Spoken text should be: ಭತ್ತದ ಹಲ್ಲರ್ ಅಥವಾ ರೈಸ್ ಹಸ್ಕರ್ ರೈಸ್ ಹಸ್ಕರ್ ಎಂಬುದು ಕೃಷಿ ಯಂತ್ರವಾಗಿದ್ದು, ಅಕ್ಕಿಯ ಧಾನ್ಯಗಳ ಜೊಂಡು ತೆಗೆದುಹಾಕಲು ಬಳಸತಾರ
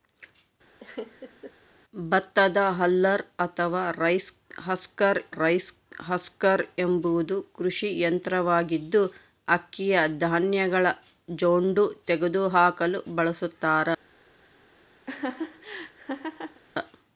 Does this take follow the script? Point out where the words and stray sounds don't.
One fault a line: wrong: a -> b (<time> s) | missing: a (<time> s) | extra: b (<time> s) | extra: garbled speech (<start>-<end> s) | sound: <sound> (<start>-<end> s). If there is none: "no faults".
sound: laugh (0.8-1.5 s)
sound: laugh (15.1-16.6 s)